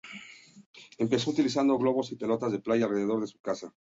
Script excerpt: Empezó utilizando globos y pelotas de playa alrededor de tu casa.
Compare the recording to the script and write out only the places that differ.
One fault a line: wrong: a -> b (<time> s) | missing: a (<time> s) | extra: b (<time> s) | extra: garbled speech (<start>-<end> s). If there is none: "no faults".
wrong: tu -> su (3.3 s)